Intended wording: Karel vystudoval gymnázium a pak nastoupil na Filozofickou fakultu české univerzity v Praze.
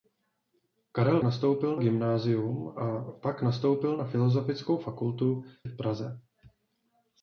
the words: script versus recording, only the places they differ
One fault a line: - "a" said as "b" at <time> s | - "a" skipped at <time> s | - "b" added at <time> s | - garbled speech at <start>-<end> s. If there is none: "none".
- "vystudoval" said as "nastoupil" at 1.2 s
- "české univerzity" skipped at 5.4 s